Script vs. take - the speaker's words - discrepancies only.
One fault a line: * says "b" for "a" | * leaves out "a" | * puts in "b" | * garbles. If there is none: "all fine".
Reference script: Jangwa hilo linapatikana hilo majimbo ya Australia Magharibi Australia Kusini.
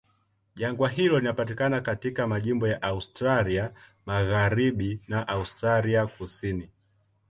* says "katika" for "hilo"
* puts in "na"